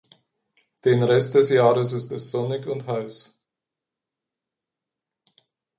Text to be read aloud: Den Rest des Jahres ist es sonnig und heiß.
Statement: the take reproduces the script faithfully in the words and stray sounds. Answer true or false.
true